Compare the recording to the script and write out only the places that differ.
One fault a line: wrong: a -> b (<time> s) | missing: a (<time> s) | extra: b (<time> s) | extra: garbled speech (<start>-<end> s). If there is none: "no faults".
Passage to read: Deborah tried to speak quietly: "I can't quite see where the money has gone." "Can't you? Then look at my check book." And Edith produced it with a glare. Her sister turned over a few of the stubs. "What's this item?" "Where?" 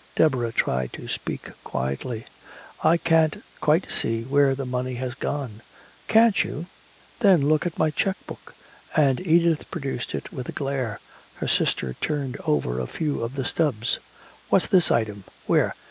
no faults